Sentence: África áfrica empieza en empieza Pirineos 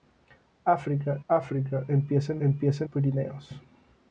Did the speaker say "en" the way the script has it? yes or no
yes